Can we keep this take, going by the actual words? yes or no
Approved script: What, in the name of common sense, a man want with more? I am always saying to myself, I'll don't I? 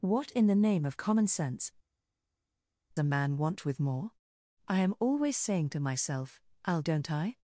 yes